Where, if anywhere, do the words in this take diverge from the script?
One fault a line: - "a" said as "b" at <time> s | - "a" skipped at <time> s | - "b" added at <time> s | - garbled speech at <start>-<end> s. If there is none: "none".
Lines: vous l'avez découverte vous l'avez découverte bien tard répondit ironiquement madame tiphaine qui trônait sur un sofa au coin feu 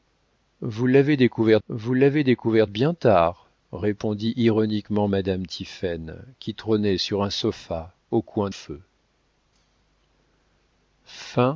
none